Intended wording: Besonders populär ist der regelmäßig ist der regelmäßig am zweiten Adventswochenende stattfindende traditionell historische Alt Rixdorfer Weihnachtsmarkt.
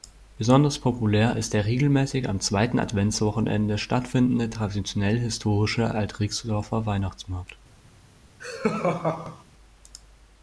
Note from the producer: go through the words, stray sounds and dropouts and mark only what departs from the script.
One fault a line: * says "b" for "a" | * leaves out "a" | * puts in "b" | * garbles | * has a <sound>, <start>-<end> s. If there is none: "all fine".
* leaves out "ist der regelmäßig"
* has a laugh, 8.4-9.4 s